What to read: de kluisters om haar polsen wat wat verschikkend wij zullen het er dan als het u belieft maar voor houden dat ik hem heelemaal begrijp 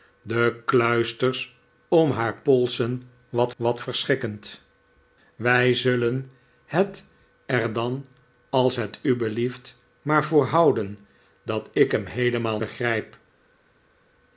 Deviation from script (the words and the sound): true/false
false